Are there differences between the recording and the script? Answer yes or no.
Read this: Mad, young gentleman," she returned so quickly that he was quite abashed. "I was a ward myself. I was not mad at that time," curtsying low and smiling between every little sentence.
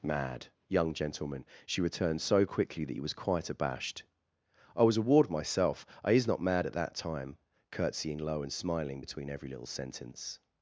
yes